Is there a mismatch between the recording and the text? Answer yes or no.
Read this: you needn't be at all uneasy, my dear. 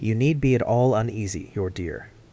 yes